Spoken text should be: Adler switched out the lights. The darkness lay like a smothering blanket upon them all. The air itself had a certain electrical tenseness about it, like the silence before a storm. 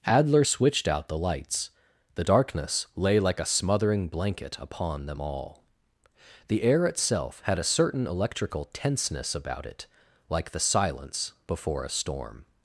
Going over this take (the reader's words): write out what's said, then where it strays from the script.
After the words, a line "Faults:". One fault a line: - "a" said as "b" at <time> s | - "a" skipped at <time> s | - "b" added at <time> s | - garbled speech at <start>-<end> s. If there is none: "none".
Adler switched out the lights. The darkness lay like a smothering blanket upon them all. The air itself had a certain electrical tenseness about it, like the silence before a storm.
Faults:
none